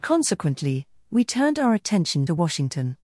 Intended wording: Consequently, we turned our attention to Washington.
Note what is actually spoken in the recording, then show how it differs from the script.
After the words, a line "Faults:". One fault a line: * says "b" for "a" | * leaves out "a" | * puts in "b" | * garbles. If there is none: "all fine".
Consequently, we turned our attention to Washington.
Faults:
all fine